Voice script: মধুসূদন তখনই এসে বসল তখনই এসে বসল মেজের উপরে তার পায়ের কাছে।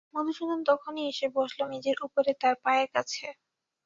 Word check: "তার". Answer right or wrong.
right